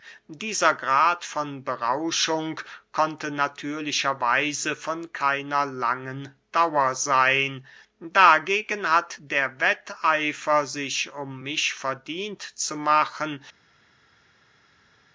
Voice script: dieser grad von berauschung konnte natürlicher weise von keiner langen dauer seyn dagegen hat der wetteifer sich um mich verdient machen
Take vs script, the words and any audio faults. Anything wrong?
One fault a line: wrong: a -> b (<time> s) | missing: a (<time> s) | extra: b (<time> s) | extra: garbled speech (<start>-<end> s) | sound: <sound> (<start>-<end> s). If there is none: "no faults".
extra: zu (12.4 s)